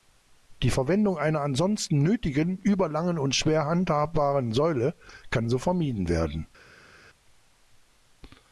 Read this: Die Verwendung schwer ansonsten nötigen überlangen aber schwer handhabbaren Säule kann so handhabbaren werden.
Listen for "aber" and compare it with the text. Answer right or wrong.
wrong